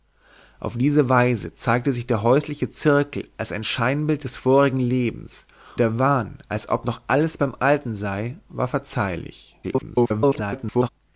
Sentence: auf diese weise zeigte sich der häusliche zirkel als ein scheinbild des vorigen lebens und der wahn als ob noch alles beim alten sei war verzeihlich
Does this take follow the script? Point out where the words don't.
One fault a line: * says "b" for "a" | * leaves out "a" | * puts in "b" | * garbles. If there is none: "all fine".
* leaves out "und"
* garbles